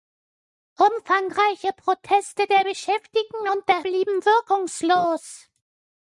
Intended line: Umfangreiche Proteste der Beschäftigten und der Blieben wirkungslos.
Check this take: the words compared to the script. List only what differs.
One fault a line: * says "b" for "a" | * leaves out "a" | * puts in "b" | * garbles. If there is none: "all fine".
all fine